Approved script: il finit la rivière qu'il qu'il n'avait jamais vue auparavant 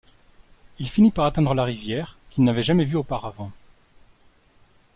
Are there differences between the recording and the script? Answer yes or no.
yes